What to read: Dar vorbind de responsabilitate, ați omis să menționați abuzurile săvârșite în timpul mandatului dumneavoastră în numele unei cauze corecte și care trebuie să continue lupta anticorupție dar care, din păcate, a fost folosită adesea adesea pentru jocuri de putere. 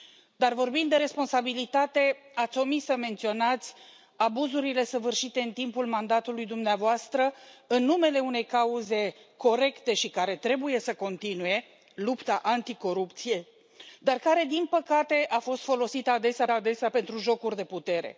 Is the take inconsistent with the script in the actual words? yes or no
no